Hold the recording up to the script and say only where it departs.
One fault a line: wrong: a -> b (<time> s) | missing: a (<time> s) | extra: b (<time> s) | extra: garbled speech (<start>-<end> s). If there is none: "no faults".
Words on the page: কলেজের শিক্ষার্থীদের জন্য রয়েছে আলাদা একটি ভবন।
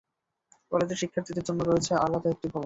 no faults